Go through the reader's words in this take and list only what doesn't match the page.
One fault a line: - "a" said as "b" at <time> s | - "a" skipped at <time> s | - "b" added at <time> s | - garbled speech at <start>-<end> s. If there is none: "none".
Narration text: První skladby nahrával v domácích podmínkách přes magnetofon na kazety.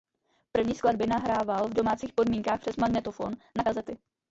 none